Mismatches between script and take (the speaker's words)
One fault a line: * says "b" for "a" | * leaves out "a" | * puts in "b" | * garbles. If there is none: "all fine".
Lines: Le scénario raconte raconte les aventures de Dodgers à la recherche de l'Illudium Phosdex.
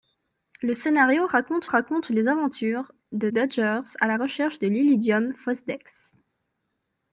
all fine